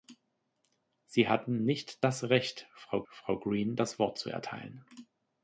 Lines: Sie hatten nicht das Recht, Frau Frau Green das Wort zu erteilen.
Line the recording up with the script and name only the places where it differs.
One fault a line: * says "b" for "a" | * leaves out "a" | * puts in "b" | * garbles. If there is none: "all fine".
all fine